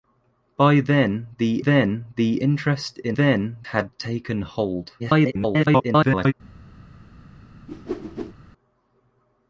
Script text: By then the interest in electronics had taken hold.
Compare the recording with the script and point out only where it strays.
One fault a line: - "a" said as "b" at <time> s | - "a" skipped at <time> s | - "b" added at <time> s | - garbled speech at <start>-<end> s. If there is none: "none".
- "then the" added at 1.6 s
- "electronics" said as "then" at 3.1 s
- garbled speech at 5.0-6.3 s